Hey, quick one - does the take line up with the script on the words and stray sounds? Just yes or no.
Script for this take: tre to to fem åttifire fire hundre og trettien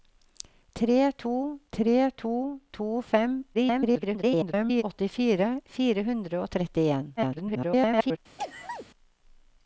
no